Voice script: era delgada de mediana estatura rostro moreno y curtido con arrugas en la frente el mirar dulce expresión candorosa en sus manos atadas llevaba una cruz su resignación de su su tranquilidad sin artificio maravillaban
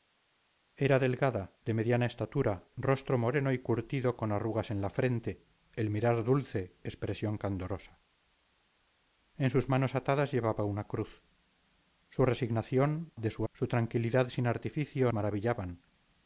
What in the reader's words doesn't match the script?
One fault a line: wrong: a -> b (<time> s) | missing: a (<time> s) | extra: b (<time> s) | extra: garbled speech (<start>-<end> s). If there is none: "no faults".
no faults